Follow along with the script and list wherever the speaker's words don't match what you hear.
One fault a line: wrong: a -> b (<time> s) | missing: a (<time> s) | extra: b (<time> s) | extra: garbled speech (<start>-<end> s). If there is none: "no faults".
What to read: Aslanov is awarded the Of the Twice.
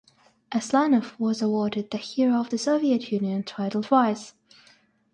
wrong: is -> was (1.2 s)
extra: Hero (2.0 s)
extra: Soviet Union title (2.6 s)